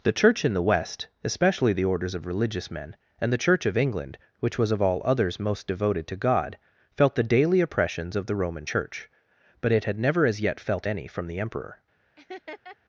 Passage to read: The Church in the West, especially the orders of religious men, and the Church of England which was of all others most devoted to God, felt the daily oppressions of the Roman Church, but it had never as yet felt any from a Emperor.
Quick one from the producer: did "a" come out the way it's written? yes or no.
no